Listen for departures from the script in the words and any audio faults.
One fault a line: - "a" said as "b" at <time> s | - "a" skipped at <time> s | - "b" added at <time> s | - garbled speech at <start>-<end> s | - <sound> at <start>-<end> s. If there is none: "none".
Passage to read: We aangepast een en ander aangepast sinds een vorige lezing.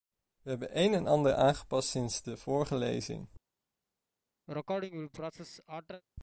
- "aangepast" said as "hebben" at 0.5 s
- "een" said as "de" at 2.2 s
- sneeze at 4.5-6.0 s